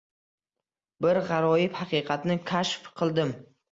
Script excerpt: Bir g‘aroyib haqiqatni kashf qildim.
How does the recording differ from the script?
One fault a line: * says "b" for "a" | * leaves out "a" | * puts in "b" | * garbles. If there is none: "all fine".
all fine